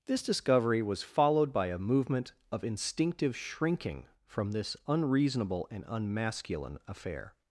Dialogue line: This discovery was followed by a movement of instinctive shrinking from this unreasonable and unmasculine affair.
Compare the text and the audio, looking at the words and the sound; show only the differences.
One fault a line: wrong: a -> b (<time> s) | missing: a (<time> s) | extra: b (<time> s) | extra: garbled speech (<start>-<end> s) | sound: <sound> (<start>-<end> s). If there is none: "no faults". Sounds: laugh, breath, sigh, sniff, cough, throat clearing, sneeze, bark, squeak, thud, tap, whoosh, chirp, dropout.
no faults